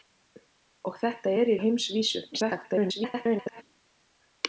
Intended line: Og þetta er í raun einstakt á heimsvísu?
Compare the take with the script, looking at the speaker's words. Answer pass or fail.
fail